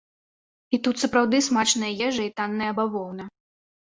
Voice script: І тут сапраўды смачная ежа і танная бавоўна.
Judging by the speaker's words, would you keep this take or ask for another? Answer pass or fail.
pass